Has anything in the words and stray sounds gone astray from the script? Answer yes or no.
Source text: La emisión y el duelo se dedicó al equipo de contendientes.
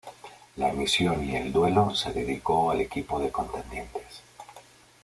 no